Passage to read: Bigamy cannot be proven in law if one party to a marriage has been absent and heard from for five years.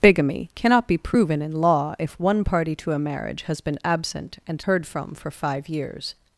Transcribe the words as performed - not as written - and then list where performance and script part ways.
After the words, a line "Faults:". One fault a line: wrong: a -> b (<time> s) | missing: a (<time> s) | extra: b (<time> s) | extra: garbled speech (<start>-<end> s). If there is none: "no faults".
Bigamy cannot be proven in law if one party to a marriage has been absent and heard from for five years.
Faults:
no faults